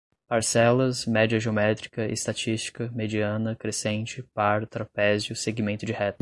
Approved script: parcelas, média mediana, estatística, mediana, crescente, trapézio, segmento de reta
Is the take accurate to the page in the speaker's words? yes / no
no